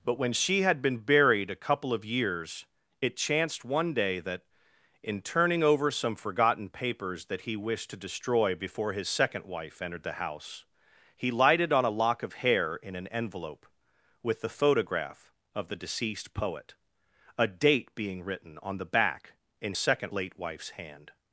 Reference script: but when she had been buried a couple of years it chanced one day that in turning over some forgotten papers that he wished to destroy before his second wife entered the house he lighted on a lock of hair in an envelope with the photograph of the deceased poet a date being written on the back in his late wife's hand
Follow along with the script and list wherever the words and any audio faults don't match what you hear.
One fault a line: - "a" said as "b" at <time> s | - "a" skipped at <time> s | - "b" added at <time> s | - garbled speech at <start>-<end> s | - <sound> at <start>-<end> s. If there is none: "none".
- "his" said as "second" at 19.8 s